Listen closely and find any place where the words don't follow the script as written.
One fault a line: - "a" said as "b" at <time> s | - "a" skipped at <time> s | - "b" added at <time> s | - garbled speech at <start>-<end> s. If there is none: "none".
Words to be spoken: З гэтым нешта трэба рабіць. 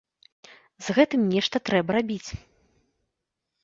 none